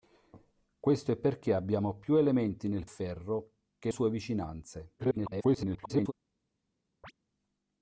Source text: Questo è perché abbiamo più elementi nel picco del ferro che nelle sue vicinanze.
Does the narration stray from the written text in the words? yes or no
yes